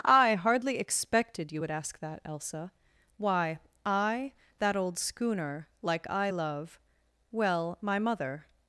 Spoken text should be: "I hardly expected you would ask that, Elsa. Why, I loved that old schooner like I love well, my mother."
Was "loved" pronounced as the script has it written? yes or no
no